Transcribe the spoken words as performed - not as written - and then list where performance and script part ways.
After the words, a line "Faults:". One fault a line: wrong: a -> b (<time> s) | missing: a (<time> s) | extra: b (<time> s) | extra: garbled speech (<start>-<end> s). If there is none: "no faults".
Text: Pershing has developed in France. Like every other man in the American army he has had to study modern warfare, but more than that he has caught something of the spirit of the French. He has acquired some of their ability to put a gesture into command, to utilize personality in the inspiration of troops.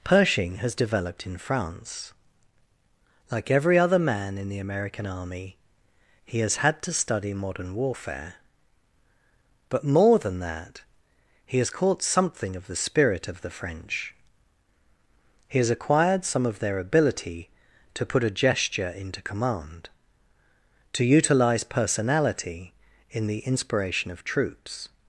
Pershing has developed in France. Like every other man in the American army he has had to study modern warfare, but more than that he has caught something of the spirit of the French. He has acquired some of their ability to put a gesture into command, to utilize personality in the inspiration of troops.
Faults:
no faults